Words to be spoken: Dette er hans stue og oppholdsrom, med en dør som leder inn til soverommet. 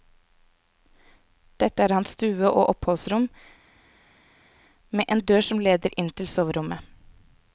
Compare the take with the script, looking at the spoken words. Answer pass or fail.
pass